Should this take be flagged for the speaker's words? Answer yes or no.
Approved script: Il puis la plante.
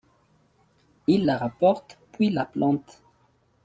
yes